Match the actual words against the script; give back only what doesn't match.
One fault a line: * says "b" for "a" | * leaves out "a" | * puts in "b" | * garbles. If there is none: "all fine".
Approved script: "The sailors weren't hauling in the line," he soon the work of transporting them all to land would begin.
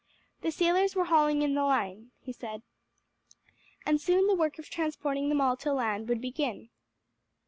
* says "were" for "weren't"
* puts in "said and"